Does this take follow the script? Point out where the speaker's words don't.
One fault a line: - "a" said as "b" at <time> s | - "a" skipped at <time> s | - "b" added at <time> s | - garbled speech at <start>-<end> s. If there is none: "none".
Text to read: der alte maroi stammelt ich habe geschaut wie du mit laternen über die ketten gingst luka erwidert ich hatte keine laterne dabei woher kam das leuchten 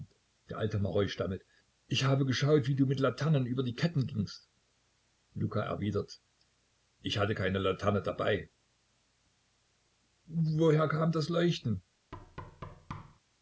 none